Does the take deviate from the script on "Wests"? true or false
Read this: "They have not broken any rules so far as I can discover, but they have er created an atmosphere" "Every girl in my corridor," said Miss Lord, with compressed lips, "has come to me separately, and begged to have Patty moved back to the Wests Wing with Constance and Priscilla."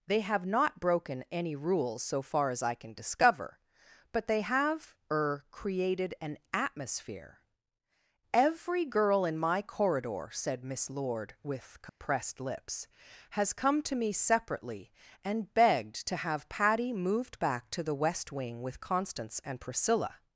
true